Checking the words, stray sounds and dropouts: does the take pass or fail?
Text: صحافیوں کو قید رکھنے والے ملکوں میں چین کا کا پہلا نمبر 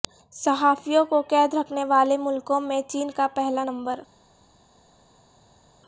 fail